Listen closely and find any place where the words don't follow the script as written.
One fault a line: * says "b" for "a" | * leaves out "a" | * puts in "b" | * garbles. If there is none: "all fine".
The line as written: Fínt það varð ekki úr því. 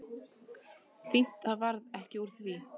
all fine